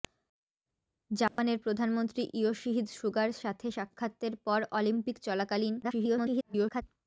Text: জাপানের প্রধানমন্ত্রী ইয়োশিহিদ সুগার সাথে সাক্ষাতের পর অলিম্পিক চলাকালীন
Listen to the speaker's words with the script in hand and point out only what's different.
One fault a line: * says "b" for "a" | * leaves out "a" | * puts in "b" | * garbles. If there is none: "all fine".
* garbles